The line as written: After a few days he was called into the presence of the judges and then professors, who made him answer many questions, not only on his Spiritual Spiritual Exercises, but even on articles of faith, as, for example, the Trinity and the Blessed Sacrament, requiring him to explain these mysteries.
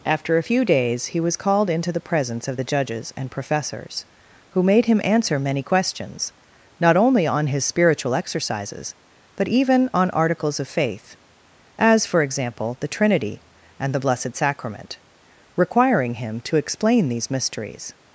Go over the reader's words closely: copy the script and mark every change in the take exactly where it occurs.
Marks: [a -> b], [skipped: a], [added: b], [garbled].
After a few days he was called into the presence of the judges and [skipped: then] professors, who made him answer many questions, not only on his Spiritual [skipped: Spiritual] Exercises, but even on articles of faith, as, for example, the Trinity and the Blessed Sacrament, requiring him to explain these mysteries.